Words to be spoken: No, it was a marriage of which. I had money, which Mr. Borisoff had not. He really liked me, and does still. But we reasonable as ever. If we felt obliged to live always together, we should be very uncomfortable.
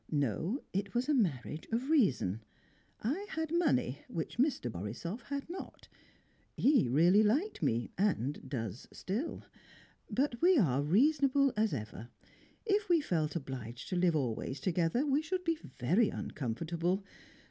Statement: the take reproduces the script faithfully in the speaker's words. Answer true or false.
false